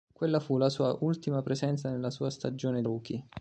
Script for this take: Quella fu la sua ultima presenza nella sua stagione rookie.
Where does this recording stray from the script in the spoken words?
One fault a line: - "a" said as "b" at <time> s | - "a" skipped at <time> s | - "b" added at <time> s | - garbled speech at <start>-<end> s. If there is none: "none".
none